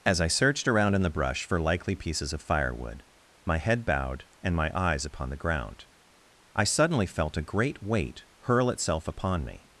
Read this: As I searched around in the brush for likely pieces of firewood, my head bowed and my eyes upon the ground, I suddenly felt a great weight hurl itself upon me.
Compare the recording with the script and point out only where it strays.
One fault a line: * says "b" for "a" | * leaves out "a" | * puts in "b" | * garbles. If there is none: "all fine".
all fine